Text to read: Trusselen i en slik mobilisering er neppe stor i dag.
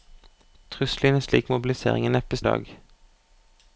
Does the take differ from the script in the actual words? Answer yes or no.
yes